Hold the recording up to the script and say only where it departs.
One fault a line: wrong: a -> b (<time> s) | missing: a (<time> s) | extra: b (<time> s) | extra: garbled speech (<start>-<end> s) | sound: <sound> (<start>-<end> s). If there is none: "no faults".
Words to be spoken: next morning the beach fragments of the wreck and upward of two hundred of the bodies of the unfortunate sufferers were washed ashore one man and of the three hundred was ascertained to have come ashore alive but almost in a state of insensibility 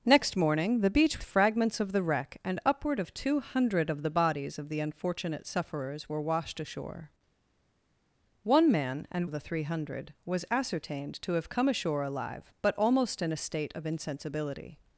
no faults